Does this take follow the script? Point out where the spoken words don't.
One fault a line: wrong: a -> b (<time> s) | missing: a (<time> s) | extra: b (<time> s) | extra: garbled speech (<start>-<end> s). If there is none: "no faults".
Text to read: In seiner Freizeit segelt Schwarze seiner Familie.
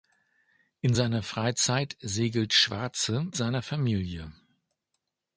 no faults